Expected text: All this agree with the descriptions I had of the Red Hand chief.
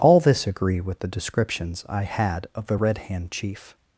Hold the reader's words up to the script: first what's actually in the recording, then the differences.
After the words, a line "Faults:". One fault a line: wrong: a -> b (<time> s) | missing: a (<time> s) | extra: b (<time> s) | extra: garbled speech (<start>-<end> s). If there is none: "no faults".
All this agree with the descriptions I had of the Red Hand chief.
Faults:
no faults